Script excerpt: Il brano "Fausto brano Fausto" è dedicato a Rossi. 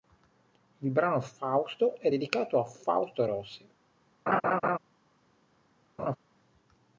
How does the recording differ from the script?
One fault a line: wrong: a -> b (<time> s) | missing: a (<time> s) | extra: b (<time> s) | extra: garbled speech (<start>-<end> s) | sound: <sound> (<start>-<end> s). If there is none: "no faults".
missing: brano Fausto (2.0 s)
extra: Fausto (2.7 s)
sound: laugh (4.3-4.8 s)
sound: laugh (6.0-6.2 s)